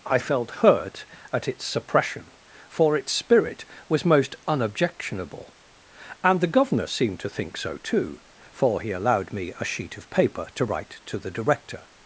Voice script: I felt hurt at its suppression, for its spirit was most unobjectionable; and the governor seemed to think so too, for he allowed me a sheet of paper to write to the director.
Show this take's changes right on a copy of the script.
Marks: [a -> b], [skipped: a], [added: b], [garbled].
I felt hurt at its suppression, for its spirit was most unobjectionable; and the governor seemed to think so too, for he allowed me a sheet of paper to write to the director.